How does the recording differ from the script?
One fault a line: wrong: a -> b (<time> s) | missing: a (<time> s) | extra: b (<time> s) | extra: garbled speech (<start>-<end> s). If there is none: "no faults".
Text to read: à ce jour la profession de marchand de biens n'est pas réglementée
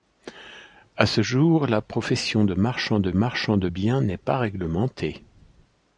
extra: marchand de (3.1 s)